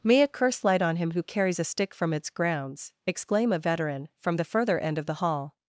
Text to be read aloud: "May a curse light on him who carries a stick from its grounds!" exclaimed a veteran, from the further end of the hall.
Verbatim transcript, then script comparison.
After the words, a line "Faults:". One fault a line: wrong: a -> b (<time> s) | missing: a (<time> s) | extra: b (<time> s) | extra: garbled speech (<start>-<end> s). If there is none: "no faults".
"May a curse light on him who carries a stick from its grounds!" exclaim a veteran, from the further end of the hall.
Faults:
wrong: exclaimed -> exclaim (3.0 s)